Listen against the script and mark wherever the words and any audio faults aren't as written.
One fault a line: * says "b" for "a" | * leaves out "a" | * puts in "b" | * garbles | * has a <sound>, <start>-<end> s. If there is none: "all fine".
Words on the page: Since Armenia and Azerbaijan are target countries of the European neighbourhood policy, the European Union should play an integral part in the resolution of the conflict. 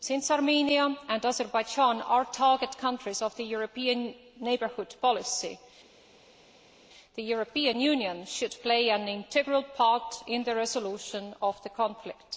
all fine